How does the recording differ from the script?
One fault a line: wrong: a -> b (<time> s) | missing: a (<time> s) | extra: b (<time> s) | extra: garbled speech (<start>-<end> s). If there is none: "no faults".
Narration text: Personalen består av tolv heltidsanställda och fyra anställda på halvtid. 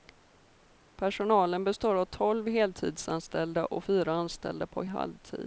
no faults